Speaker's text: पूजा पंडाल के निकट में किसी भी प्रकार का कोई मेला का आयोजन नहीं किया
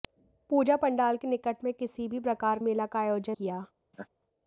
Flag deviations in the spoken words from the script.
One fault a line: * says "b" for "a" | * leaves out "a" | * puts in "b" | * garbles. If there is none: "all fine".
* leaves out "का कोई"
* leaves out "नहीं"